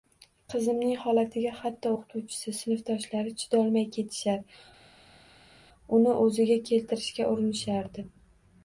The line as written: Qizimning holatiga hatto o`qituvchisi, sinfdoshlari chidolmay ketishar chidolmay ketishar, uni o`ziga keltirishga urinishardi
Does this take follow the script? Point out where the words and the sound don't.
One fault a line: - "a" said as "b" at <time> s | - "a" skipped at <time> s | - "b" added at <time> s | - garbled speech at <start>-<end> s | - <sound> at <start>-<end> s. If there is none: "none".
- "chidolmay ketishar" skipped at 4.4 s